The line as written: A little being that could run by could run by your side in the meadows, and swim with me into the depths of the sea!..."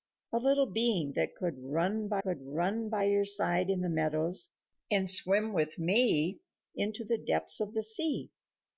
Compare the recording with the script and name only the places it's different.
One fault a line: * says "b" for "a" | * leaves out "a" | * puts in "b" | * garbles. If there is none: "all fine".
all fine